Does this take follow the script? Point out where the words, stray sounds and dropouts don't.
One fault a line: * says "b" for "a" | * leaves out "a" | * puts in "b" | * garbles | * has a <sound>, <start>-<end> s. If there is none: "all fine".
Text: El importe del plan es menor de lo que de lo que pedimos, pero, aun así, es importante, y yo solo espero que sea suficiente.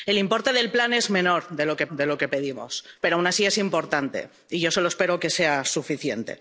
all fine